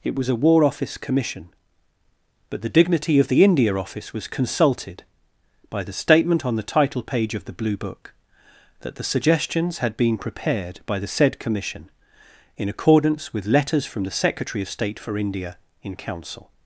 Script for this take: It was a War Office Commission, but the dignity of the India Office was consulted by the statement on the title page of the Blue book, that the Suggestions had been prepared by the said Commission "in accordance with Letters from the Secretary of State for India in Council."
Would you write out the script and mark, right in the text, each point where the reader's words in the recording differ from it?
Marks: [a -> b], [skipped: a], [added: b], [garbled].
It was a War Office Commission, but the dignity of the India Office was consulted by the statement on the title page of the Blue book, that the Suggestions had been prepared by the said Commission "in accordance with Letters from the Secretary of State for India in Council."